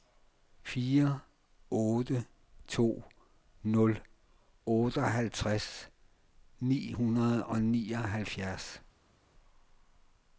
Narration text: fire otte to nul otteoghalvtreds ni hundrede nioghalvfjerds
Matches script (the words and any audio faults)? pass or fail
fail